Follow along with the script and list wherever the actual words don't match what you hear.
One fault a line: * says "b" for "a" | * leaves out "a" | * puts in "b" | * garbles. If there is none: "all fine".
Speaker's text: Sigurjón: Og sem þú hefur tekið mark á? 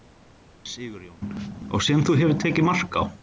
all fine